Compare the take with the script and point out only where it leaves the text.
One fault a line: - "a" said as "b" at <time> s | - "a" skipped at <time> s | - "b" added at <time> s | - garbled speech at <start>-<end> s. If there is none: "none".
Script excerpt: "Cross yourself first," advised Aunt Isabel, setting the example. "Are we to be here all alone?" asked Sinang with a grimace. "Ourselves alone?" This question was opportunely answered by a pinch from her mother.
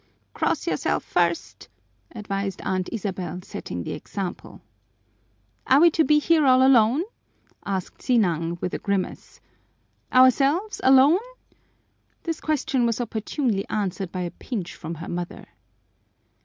none